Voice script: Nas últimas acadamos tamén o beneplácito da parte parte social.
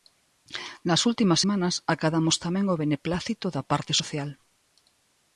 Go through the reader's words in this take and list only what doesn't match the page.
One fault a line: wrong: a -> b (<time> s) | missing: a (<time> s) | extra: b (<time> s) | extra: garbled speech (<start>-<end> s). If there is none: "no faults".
extra: semanas (1.4 s)
missing: parte (3.9 s)